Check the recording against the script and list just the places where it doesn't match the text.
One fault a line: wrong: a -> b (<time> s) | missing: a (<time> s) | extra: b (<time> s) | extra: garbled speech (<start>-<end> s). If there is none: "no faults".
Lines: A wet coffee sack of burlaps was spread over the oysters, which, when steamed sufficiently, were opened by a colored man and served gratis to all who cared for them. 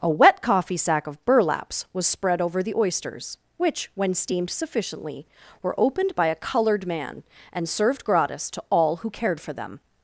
no faults